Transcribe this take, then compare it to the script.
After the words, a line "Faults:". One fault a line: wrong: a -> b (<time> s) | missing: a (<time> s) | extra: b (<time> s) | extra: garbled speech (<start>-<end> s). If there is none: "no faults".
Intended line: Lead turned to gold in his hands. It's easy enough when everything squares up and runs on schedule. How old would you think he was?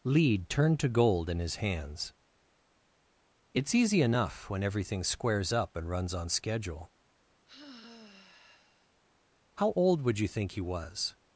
Lead turned to gold in his hands. It's easy enough when everything squares up and runs on schedule. How old would you think he was?
Faults:
no faults